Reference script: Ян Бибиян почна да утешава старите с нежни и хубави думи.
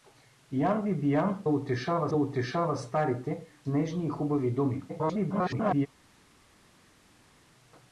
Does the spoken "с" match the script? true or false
false